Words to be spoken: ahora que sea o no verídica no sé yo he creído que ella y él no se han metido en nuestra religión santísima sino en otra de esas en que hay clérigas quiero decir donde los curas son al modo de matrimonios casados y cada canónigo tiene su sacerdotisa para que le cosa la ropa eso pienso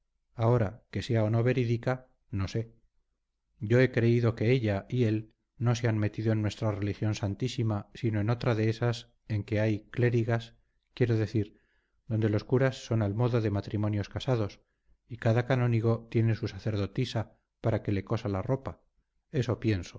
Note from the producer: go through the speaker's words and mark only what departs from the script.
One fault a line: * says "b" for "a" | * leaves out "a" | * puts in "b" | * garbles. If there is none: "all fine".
all fine